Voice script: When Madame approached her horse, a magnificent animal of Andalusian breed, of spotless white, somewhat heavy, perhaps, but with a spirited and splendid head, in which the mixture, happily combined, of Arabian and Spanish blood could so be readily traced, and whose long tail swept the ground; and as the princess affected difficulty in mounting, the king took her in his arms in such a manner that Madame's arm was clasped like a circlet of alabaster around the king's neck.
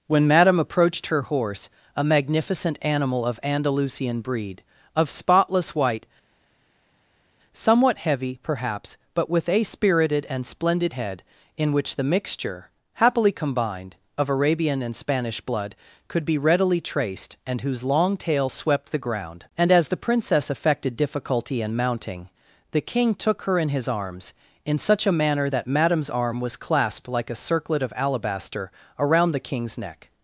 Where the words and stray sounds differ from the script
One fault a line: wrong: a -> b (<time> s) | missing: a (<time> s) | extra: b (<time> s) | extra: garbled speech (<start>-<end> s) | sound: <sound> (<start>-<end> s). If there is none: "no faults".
missing: so (16.2 s)